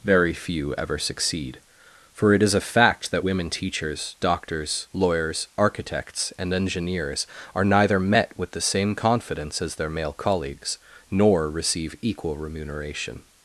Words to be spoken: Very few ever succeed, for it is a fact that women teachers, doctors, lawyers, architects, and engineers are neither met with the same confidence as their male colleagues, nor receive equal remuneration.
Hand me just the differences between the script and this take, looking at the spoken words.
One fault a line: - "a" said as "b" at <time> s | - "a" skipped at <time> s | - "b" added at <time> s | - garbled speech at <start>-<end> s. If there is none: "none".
none